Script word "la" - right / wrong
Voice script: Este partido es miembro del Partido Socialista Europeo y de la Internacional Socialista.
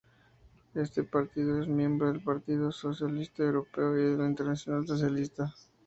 right